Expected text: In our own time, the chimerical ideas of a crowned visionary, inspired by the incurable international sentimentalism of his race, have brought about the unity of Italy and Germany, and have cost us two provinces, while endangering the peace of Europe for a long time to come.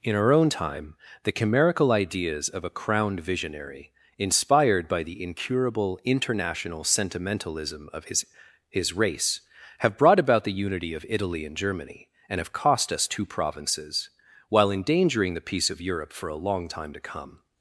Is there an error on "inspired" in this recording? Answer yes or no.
no